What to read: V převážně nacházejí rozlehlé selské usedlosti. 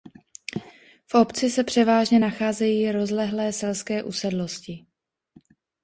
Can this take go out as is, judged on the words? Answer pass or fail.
fail